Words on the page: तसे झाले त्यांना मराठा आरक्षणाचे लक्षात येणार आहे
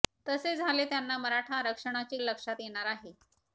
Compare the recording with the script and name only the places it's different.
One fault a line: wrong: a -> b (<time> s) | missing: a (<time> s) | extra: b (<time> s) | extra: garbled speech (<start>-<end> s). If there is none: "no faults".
no faults